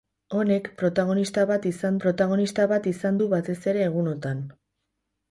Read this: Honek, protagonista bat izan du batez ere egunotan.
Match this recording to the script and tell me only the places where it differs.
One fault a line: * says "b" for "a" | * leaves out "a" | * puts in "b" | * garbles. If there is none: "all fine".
* puts in "protagonista bat izan"